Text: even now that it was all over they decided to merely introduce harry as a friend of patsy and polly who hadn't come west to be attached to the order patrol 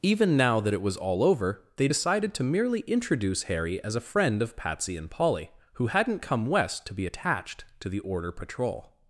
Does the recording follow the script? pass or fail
pass